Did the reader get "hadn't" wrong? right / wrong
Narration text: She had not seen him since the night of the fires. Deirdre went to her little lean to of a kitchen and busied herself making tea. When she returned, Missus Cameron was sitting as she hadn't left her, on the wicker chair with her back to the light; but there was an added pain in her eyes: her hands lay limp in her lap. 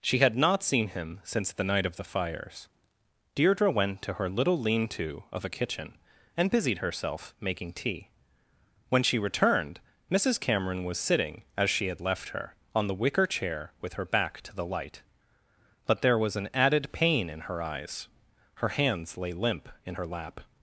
wrong